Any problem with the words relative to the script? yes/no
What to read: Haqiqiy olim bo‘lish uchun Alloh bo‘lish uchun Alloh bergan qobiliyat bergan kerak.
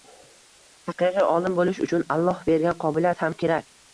yes